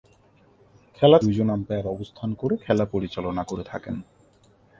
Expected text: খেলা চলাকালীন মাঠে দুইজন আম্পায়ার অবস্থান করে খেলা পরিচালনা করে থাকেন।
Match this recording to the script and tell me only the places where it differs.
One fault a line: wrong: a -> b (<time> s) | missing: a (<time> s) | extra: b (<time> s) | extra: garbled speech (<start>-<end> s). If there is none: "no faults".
missing: চলাকালীন মাঠে (1.2 s)